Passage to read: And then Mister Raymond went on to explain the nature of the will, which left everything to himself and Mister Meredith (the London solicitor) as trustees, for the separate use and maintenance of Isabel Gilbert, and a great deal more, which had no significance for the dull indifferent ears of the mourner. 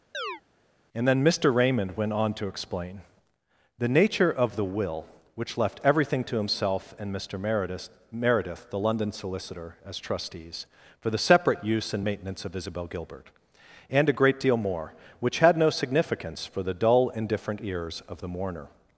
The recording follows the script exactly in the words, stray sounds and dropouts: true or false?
false